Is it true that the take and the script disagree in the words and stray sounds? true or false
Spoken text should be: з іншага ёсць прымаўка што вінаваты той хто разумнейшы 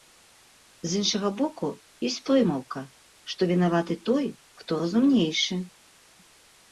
true